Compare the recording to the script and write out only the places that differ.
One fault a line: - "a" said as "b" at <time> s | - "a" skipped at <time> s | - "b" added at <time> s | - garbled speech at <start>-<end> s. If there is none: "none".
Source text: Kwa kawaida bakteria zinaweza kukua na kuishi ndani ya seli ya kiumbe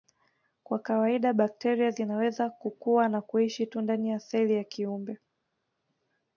- "tu" added at 3.7 s